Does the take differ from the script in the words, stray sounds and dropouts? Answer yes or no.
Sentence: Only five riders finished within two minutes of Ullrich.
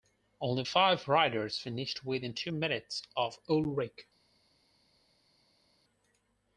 no